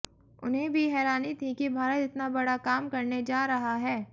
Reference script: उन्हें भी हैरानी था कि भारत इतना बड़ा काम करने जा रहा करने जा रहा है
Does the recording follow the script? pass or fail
fail